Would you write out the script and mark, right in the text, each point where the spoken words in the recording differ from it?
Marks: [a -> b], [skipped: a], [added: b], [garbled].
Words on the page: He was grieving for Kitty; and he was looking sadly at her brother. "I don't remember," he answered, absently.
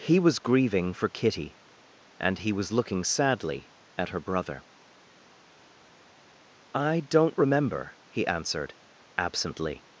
He was grieving for Kitty; and he was looking sadly at her brother. "I don't remember," he answered, absently.